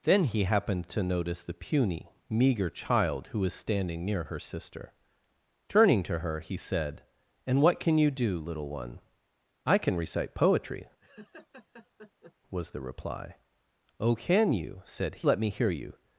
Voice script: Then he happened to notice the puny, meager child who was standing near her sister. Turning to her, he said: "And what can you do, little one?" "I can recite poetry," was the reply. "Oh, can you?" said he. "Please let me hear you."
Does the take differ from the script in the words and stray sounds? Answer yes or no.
yes